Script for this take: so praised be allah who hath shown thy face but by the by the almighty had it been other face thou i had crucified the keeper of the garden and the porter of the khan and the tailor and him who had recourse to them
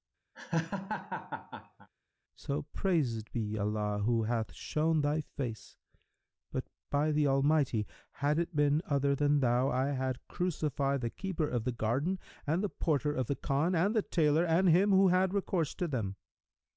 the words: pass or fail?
fail